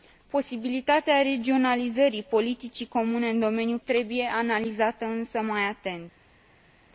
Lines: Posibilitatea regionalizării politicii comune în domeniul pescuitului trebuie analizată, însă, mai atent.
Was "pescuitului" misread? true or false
true